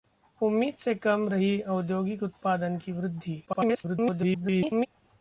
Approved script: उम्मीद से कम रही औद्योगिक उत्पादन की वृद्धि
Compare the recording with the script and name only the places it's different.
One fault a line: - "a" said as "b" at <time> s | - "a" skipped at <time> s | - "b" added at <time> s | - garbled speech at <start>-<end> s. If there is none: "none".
- garbled speech at 3.5-4.9 s